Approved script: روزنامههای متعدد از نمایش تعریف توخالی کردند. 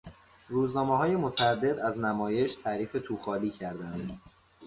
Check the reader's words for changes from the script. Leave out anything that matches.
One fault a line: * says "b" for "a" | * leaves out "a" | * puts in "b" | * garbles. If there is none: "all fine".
all fine